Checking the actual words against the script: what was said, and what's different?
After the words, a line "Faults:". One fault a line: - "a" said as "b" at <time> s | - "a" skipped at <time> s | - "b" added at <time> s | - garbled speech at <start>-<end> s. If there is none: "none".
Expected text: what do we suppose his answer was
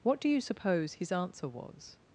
what do you suppose his answer was
Faults:
- "we" said as "you" at 0.3 s